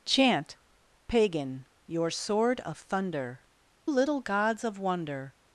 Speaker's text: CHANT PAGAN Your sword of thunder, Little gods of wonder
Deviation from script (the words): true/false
false